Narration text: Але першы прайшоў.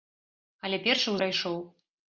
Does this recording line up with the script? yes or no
yes